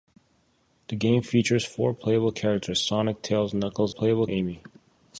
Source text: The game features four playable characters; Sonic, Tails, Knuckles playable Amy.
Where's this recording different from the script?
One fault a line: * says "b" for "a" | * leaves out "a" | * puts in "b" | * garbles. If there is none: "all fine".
all fine